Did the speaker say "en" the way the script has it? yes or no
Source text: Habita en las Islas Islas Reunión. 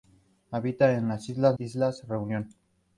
yes